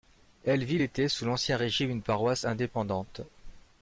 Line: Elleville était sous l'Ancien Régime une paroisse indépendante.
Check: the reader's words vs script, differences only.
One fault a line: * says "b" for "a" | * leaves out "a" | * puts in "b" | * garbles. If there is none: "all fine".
all fine